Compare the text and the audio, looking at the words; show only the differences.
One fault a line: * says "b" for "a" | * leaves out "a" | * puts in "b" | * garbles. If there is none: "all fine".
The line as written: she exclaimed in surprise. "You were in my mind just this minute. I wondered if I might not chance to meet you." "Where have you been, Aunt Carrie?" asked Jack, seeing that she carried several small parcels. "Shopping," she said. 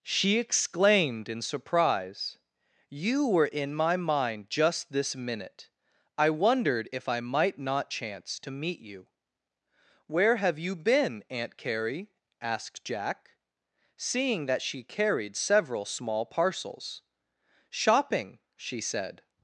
all fine